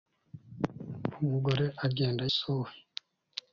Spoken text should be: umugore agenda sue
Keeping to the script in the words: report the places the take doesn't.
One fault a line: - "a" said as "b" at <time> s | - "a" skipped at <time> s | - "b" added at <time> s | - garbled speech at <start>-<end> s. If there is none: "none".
none